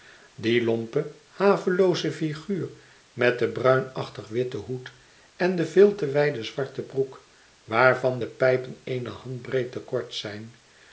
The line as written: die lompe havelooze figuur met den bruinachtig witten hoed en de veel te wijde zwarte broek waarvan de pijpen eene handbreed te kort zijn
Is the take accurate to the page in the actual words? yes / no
yes